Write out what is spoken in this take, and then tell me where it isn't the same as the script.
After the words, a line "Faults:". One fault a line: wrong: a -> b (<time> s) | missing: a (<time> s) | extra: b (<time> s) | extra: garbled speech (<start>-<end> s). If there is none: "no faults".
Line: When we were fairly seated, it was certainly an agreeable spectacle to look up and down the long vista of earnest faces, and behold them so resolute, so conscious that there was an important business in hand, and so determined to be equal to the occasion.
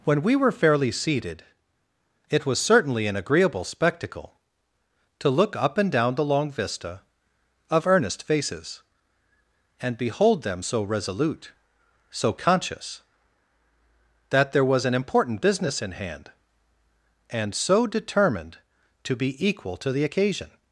When we were fairly seated, it was certainly an agreeable spectacle to look up and down the long vista of earnest faces, and behold them so resolute, so conscious that there was an important business in hand, and so determined to be equal to the occasion.
Faults:
no faults